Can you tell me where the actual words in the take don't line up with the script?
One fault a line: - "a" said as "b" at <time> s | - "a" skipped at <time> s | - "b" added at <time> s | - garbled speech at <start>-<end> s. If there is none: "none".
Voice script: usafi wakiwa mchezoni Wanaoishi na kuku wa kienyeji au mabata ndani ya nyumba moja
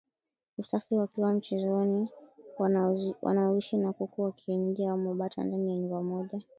none